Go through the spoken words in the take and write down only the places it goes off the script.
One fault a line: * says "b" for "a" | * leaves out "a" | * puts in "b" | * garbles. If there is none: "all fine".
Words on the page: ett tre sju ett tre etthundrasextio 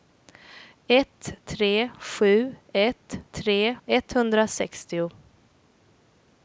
all fine